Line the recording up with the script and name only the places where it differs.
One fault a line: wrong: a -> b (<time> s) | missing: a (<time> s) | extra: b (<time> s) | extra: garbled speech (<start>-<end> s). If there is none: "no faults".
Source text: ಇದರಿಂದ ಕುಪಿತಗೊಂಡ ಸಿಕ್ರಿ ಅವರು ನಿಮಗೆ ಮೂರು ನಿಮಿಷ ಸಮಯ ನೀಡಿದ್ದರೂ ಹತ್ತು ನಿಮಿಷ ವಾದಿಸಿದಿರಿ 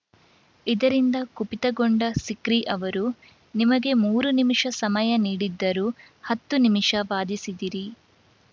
no faults